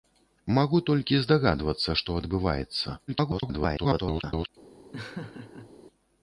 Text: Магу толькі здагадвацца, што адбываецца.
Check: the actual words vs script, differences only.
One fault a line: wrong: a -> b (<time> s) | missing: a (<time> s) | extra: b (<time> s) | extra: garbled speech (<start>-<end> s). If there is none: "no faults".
extra: garbled speech (3.1-4.5 s)